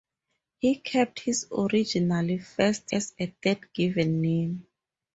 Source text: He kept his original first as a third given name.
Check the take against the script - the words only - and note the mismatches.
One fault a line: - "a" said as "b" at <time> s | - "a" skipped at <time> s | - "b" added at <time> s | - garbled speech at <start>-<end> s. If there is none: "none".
none